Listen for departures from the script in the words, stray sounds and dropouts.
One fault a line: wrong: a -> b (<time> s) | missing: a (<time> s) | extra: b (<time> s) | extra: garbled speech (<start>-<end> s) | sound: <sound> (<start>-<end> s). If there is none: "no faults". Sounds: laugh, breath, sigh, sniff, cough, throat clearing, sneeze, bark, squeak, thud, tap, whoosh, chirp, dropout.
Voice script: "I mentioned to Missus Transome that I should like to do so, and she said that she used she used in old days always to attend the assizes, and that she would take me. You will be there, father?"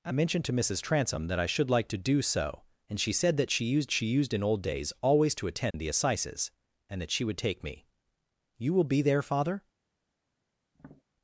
sound: dropout (5.7-5.7 s)
sound: tap (10.7-11.0 s)